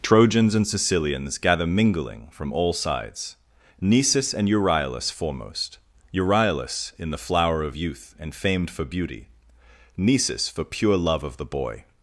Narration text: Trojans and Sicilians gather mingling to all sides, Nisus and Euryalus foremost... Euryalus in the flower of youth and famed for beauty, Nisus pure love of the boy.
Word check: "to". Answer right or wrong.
wrong